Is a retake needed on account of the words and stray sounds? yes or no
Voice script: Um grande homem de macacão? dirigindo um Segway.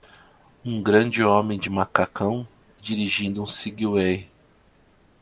no